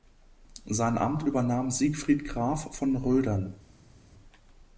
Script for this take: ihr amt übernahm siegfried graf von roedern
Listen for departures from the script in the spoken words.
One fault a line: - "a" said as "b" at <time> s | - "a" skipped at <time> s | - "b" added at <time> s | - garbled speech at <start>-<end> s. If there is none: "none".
- "ihr" said as "sein" at 0.7 s